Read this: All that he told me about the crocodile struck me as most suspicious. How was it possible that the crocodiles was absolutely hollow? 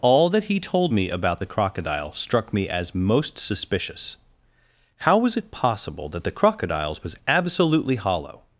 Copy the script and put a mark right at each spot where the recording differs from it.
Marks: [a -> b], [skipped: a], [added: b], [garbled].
All that he told me about the crocodile struck me as most suspicious. How was it possible that the crocodiles was absolutely hollow?